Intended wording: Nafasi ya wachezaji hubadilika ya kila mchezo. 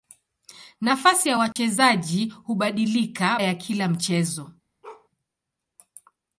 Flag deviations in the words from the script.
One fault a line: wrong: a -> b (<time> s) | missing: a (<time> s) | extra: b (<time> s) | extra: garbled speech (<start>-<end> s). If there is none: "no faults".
no faults